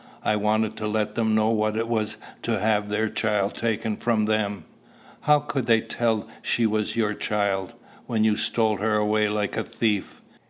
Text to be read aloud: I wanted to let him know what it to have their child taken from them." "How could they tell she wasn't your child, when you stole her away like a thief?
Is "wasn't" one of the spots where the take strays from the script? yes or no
yes